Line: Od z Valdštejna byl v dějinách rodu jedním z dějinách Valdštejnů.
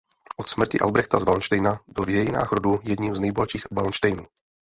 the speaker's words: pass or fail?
fail